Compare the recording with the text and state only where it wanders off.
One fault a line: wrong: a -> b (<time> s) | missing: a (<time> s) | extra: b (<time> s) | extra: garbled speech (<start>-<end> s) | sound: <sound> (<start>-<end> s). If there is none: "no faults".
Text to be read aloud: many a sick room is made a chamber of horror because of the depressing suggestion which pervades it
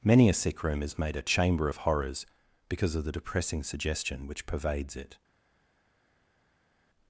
wrong: horror -> horrors (1.8 s)